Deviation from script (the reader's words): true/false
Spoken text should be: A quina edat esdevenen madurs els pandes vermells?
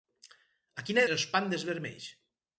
true